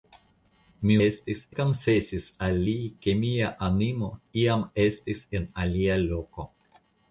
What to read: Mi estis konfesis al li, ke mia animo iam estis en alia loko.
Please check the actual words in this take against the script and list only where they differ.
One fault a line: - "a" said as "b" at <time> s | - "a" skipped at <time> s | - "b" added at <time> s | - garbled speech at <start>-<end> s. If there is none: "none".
none